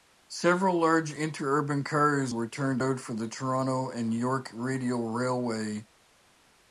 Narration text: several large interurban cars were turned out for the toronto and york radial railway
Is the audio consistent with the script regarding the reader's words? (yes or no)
yes